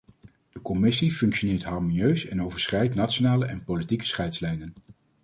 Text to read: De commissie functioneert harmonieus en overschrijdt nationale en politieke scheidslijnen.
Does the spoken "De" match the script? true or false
true